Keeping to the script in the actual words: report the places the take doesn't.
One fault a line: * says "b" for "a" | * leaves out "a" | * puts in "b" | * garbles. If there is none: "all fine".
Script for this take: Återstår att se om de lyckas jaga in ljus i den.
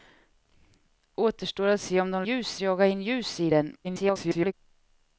* says "ljus" for "lyckas"
* garbles